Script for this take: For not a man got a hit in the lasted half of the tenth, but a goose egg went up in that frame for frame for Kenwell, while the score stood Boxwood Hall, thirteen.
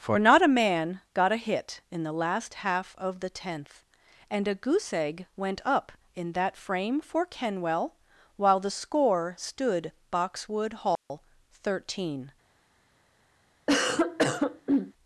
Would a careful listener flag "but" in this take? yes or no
yes